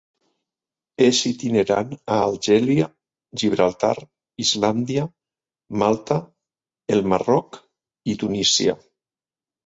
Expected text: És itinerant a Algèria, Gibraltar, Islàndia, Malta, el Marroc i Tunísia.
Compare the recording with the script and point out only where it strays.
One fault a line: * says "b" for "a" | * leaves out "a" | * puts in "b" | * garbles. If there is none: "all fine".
all fine